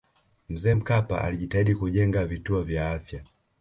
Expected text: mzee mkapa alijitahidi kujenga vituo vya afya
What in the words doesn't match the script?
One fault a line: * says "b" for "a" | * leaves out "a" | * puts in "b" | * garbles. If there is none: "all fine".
all fine